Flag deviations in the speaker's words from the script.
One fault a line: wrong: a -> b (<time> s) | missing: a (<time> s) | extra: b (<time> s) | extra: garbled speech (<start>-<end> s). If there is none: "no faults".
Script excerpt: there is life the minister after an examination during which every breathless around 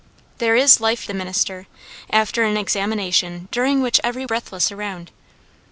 no faults